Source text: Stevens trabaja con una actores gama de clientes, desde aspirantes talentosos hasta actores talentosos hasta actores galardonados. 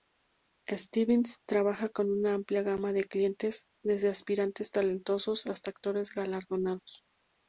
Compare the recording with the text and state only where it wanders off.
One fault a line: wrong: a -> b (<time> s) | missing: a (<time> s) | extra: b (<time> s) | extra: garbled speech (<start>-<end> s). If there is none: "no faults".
wrong: actores -> amplia (2.3 s)
missing: talentosos hasta actores (6.1 s)